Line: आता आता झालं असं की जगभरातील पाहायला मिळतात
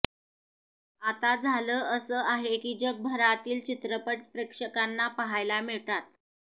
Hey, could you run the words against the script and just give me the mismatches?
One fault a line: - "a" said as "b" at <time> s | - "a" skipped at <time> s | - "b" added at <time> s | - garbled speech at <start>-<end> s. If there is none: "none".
- "आता" skipped at 1.4 s
- "आहे" added at 2.2 s
- "चित्रपट प्रेक्षकांना" added at 3.6 s